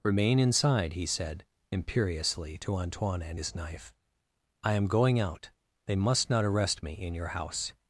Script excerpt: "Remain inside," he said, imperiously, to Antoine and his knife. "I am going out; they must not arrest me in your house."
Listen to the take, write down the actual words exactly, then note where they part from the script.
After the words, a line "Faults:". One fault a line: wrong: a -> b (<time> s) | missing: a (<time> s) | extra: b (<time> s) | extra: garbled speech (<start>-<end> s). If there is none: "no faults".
"Remain inside," he said, imperiously, to Antoine and his knife. "I am going out; they must not arrest me in your house."
Faults:
no faults